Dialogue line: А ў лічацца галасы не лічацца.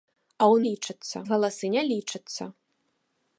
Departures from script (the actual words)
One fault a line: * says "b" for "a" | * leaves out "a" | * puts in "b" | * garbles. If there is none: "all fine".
all fine